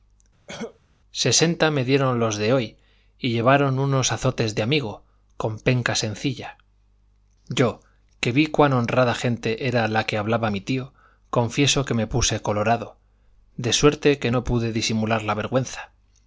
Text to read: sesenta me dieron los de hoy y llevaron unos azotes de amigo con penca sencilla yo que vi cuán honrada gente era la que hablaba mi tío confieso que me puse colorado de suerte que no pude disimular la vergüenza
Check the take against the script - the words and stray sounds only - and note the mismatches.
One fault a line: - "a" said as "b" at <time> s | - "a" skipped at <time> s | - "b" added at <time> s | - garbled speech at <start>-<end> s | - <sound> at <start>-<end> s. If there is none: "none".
- cough at 0.5-0.8 s